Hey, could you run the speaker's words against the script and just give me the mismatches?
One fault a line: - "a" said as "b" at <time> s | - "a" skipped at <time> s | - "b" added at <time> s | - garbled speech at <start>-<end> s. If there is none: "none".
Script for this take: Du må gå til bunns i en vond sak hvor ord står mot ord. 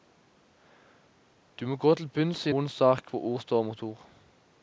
- "en" skipped at 2.5 s